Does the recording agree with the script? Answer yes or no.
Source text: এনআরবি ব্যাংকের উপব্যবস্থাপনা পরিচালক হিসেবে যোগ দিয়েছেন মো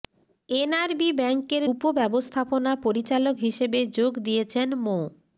yes